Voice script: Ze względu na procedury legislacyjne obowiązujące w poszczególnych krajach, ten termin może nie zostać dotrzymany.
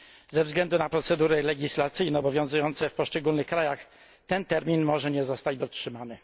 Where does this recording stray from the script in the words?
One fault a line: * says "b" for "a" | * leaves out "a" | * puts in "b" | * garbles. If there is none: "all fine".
all fine